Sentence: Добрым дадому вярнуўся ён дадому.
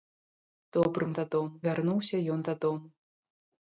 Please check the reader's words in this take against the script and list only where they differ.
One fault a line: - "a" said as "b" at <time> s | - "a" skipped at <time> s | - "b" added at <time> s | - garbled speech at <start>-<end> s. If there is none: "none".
none